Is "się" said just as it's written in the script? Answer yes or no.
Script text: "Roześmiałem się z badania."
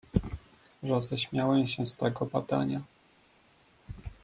yes